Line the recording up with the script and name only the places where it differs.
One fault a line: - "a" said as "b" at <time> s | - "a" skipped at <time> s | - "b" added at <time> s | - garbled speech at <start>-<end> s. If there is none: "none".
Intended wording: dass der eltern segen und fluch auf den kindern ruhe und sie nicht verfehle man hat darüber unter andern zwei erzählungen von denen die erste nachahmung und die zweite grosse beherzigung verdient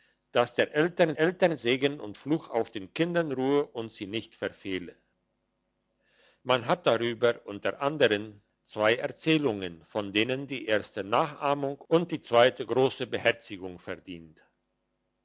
- "eltern" added at 1.2 s